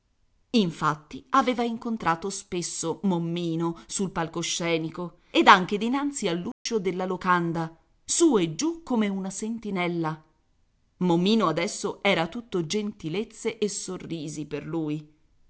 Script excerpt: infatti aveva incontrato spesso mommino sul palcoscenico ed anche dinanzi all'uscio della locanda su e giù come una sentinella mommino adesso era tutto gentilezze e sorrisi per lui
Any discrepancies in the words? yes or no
no